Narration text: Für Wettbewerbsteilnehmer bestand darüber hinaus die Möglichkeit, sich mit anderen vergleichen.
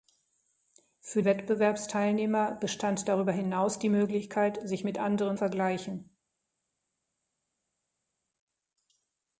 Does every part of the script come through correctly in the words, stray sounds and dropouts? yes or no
yes